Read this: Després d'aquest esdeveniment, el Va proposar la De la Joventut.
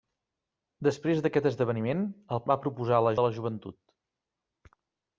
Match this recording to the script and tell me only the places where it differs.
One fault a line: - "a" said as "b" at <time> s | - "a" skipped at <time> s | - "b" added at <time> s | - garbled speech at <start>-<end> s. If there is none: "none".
none